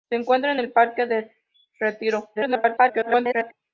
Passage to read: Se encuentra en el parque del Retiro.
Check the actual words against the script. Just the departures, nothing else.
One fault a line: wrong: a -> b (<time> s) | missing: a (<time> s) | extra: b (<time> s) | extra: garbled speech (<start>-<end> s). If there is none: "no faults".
extra: garbled speech (2.4-3.5 s)